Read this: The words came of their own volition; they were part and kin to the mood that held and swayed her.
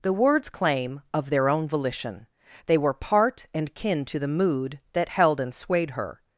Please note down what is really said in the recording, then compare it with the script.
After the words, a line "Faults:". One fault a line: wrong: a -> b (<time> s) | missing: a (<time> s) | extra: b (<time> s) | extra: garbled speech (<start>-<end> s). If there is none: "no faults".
The words claim of their own volition; they were part and kin to the mood that held and swayed her.
Faults:
wrong: came -> claim (0.5 s)